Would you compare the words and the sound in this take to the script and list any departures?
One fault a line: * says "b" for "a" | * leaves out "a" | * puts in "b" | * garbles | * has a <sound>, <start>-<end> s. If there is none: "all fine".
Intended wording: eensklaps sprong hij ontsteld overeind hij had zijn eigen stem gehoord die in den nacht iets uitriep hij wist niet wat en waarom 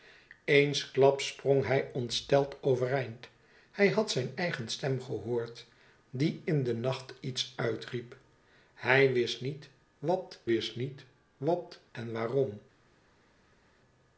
* puts in "wist niet wat"